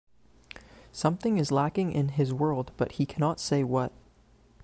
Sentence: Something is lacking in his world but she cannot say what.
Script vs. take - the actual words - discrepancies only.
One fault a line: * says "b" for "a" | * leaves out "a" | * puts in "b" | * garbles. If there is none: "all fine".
* says "he" for "she"